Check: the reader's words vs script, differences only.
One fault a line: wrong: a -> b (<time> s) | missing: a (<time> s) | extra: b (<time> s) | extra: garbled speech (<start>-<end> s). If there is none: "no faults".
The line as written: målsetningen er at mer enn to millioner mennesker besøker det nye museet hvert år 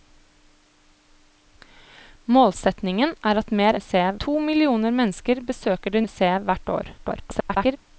wrong: enn -> museet (3.7 s)
missing: nye (6.0 s)
extra: garbled speech (7.0-7.8 s)